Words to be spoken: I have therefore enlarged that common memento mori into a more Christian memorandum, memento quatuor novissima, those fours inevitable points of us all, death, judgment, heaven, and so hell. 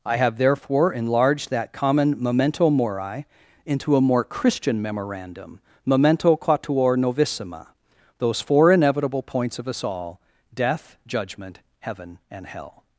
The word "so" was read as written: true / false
false